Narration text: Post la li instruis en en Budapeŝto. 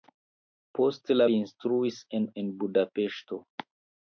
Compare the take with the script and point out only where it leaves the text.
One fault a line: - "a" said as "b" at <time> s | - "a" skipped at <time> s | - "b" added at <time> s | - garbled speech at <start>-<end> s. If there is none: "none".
none